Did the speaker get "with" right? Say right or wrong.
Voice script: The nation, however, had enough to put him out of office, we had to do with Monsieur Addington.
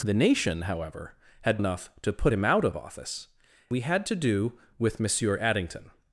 right